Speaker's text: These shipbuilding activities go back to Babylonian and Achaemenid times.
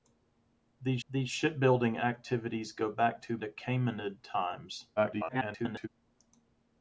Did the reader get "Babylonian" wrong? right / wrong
wrong